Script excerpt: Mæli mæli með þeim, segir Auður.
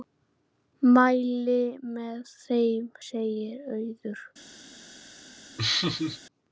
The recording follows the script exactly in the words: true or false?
false